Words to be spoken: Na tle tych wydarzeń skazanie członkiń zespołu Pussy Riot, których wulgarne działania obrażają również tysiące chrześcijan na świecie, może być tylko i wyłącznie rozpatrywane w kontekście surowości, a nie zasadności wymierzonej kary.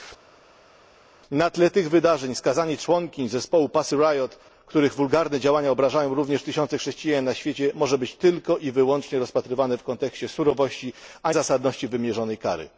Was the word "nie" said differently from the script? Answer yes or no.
yes